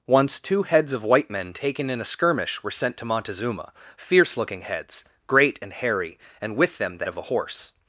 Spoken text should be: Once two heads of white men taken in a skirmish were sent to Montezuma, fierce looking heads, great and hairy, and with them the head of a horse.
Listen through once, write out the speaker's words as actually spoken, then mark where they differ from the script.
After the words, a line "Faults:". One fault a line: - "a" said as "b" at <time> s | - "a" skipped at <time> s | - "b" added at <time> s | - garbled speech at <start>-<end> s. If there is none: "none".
Once two heads of white men taken in a skirmish were sent to Montezuma, fierce looking heads, great and hairy, and with them the of a horse.
Faults:
- "head" skipped at 7.0 s